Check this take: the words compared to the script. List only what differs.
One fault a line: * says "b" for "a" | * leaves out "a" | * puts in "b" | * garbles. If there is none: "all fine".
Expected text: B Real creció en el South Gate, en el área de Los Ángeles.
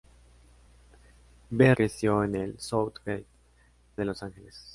* leaves out "Real"
* leaves out "en el área"